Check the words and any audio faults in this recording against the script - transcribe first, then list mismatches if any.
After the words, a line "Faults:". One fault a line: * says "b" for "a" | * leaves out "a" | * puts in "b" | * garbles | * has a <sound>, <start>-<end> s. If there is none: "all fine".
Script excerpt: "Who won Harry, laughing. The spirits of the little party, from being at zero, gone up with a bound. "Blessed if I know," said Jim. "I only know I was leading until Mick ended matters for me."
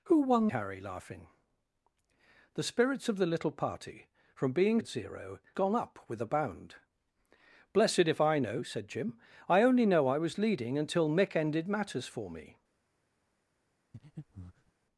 "Who won Harry, laughing. The spirits of the little party, from being at zero, gone up with a bound. "Blessed if I know," said Jim. "I only know I was leading until Mick ended matters for me."
Faults:
* has a breath, 13.9-14.7 s